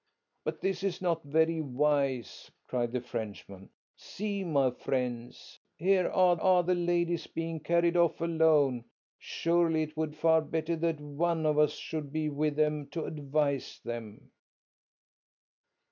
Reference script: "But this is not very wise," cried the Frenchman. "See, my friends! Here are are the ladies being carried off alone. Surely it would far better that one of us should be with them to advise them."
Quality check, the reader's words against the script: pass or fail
pass